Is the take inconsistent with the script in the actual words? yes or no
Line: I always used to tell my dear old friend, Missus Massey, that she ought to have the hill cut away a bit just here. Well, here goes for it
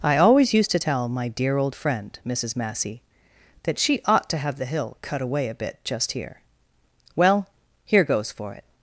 no